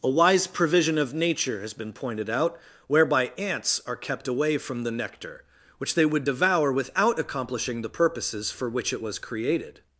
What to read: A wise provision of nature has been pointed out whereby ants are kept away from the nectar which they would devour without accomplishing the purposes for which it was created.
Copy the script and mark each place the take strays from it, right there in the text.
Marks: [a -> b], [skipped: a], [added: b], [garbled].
A wise provision of nature has been pointed out whereby ants are kept away from the nectar which they would devour without accomplishing the purposes for which it was created.